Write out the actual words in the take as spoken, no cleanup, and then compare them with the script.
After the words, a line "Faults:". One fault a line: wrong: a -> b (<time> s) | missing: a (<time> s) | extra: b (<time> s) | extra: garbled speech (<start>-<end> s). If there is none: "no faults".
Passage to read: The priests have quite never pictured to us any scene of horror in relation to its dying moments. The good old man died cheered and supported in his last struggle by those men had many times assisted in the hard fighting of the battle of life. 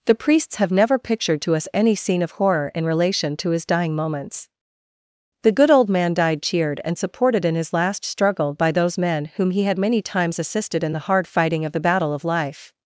The priests have never pictured to us any scene of horror in relation to his dying moments. The good old man died cheered and supported in his last struggle by those men whom he had many times assisted in the hard fighting of the battle of life.
Faults:
missing: quite (0.7 s)
wrong: its -> his (3.5 s)
extra: whom he (9.3 s)